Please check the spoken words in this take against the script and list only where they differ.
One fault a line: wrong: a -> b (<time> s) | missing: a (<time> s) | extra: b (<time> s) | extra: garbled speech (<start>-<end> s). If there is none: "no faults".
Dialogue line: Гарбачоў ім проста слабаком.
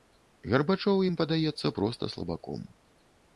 extra: падаецца (1.2 s)